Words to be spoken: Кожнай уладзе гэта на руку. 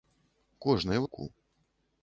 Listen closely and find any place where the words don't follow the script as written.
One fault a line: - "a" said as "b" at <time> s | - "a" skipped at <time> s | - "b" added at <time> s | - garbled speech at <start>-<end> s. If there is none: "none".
- "уладзе гэта на" skipped at 1.0 s